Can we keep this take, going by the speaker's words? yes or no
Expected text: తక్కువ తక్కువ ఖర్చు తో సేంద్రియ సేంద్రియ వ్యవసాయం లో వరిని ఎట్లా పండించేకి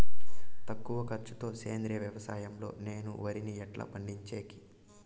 no